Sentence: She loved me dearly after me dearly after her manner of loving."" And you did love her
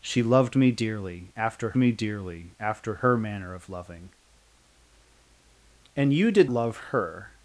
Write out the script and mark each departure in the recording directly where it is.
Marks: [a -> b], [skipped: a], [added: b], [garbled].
She loved me dearly after me dearly after her manner of loving."" And you did love her